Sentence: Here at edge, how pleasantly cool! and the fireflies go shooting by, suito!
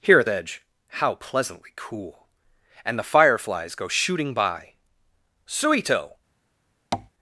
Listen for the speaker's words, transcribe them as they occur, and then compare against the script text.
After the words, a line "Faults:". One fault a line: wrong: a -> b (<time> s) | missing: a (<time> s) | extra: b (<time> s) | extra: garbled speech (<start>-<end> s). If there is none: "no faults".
Here at edge, how pleasantly cool! and the fireflies go shooting by, suito!
Faults:
no faults